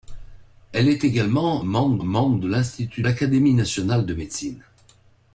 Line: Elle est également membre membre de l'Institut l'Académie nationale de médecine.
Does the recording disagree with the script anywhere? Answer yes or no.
no